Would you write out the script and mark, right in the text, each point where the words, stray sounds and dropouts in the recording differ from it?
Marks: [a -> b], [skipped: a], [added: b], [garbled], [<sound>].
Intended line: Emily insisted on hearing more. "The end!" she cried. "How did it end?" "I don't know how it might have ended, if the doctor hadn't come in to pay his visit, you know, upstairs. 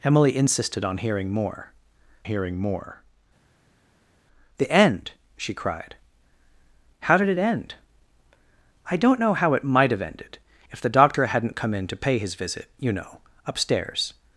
Emily insisted on hearing more. [added: hearing more] "The end!" she cried. "How did it end?" "I don't know how it might have ended, if the doctor hadn't come in to pay his visit, you know, upstairs.